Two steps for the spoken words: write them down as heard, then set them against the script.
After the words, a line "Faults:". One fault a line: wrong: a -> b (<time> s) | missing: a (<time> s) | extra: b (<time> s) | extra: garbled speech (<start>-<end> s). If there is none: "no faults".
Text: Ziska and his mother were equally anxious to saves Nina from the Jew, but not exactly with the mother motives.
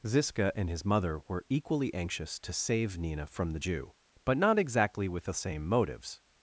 Ziska and his mother were equally anxious to save Nina from the Jew, but not exactly with the same motives.
Faults:
wrong: saves -> save (2.5 s)
wrong: mother -> same (5.3 s)